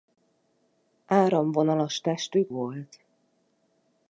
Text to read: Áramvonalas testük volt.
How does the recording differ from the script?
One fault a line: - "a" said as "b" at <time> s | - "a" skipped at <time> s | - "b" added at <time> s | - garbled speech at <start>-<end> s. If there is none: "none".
none